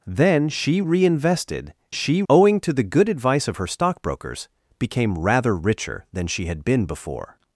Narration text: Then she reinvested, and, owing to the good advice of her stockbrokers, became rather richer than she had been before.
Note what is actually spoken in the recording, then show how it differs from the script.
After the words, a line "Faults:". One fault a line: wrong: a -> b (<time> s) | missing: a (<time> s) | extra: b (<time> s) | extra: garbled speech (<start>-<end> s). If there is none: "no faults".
Then she reinvested, she, owing to the good advice of her stockbrokers, became rather richer than she had been before.
Faults:
wrong: and -> she (1.9 s)